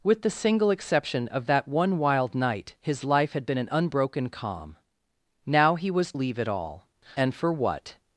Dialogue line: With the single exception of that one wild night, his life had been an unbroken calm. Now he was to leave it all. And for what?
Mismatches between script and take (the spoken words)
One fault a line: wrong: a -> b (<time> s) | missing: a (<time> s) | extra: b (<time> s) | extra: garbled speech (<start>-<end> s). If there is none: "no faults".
missing: to (6.1 s)